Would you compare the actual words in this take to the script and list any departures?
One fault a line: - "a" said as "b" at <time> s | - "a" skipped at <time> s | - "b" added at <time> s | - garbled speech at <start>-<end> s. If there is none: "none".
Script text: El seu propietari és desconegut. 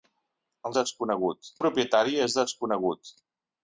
- "seu" said as "desconegut" at 0.8 s